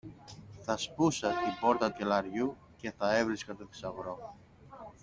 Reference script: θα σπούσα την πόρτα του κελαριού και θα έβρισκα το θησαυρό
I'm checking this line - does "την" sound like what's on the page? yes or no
yes